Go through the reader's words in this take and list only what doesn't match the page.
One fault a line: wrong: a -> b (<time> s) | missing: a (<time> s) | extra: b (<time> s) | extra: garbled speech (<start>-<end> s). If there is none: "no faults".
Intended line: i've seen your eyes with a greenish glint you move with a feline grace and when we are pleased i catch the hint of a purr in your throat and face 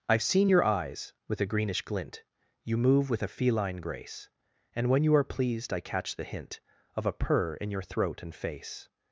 wrong: we -> you (5.0 s)